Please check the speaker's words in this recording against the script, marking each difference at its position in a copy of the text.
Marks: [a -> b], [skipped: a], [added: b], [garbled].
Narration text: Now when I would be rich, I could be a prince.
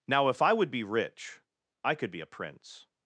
Now [when -> if] I would be rich, I could be a prince.